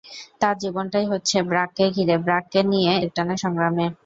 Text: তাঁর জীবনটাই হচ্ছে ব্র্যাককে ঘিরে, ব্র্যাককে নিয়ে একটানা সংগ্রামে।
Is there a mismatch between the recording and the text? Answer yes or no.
no